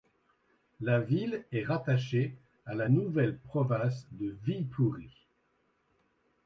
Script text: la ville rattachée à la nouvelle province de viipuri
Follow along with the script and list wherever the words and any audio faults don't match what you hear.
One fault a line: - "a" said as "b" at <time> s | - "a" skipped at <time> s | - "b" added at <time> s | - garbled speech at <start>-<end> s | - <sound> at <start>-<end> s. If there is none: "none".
- "est" added at 1.5 s